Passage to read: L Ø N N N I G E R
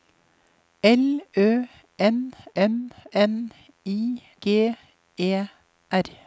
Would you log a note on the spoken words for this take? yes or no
no